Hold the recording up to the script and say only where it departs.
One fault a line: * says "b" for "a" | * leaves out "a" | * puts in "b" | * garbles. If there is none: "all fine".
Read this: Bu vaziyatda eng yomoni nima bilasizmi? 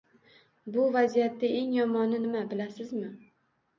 all fine